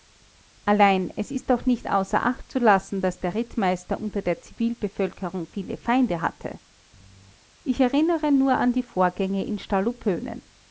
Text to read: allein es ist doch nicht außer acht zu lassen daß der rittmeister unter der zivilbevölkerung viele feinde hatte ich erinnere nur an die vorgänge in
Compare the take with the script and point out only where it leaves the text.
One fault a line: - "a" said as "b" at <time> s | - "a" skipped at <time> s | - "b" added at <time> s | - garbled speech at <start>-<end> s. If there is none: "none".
none